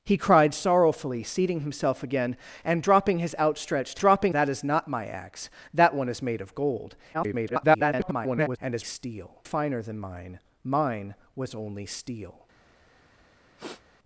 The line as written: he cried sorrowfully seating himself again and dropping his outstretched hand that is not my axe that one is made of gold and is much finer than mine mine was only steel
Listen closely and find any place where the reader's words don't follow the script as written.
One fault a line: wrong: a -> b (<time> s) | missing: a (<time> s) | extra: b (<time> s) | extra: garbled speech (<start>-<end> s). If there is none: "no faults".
wrong: hand -> dropping (4.0 s)
extra: garbled speech (7.1-8.6 s)
wrong: much -> steel (8.8 s)